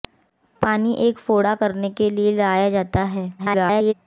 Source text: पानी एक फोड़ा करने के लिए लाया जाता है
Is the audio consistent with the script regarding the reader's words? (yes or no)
no